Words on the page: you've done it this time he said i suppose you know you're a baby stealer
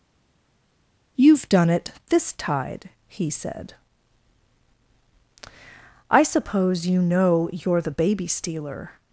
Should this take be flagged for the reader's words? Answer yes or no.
yes